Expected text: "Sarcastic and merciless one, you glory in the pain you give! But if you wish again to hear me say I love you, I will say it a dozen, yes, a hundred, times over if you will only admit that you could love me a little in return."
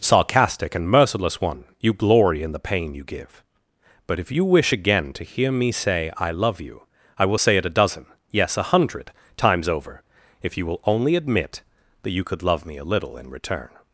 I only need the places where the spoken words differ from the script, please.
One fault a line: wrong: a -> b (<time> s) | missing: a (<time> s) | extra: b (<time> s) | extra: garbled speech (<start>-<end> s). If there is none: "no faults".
no faults